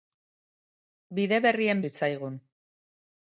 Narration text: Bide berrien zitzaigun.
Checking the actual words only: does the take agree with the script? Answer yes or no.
yes